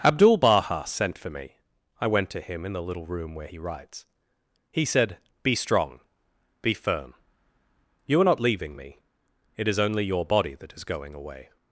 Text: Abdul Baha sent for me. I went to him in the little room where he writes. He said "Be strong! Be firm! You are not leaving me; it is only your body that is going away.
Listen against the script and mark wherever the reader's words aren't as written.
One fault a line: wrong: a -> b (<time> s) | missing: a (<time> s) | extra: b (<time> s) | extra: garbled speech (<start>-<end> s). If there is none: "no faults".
no faults